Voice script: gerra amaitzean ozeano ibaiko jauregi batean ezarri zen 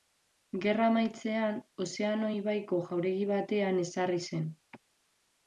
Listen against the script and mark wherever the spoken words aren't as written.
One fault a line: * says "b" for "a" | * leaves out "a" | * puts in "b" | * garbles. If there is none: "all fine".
all fine